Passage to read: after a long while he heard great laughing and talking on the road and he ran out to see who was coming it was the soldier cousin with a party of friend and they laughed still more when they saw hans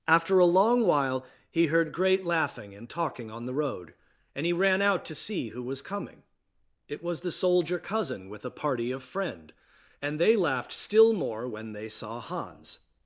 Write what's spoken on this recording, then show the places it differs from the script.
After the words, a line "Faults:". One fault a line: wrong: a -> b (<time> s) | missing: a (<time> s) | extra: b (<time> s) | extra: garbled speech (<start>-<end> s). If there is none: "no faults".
after a long while he heard great laughing and talking on the road and he ran out to see who was coming it was the soldier cousin with a party of friend and they laughed still more when they saw hans
Faults:
no faults